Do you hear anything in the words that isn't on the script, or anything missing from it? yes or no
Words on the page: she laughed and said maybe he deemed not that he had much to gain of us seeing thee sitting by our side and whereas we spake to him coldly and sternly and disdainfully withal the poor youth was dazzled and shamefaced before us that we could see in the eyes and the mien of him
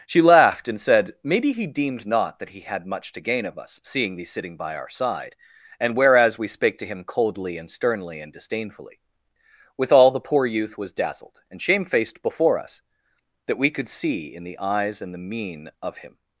no